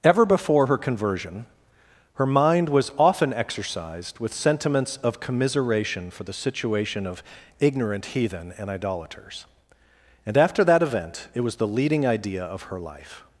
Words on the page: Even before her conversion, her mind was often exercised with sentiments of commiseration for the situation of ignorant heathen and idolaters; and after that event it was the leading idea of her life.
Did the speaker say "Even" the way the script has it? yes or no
no